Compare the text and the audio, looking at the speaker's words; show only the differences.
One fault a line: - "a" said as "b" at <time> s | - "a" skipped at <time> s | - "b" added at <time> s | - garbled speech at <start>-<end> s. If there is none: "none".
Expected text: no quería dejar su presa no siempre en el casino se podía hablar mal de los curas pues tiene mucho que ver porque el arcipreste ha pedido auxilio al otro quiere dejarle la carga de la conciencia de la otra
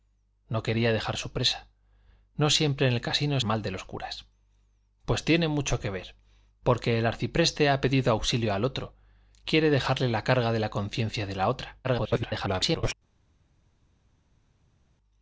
- "se podía hablar" skipped at 3.4 s
- garbled speech at 11.8-12.9 s